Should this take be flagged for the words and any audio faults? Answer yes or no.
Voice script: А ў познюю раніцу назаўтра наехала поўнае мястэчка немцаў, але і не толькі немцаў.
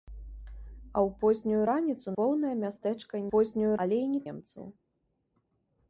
yes